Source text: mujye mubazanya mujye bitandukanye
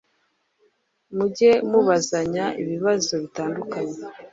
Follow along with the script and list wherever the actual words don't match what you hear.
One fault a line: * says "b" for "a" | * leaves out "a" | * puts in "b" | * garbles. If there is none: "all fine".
* says "ibibazo" for "mujye"